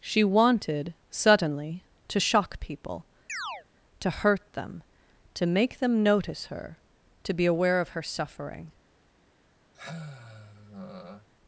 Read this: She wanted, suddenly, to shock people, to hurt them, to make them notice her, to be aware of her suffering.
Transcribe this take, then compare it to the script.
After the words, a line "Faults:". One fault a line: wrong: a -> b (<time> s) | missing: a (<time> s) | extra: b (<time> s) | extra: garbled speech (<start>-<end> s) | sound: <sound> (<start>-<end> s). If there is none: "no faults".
She wanted, suddenly, to shock people, to hurt them, to make them notice her, to be aware of her suffering.
Faults:
sound: chirp (3.3-3.7 s)
sound: sigh (9.7-11.3 s)